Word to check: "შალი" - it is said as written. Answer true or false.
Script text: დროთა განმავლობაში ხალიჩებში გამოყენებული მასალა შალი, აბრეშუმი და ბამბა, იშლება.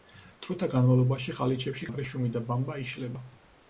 false